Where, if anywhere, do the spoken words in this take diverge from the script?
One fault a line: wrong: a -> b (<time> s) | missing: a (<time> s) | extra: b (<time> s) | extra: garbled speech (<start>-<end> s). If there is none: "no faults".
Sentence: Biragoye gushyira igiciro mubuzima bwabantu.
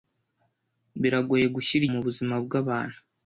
missing: igiciro (1.8 s)